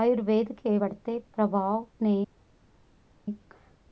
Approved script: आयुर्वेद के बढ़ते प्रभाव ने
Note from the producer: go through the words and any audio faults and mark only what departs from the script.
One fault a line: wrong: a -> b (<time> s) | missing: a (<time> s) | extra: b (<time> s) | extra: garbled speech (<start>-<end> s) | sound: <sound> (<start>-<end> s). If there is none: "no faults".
no faults